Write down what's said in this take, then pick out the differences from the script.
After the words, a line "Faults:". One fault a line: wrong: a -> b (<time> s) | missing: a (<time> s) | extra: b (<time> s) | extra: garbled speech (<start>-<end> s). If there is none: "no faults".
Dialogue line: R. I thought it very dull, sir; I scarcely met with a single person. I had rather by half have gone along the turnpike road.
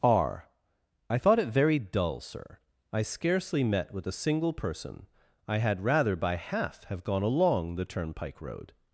R. I thought it very dull, sir; I scarcely met with a single person. I had rather by half have gone along the turnpike road.
Faults:
no faults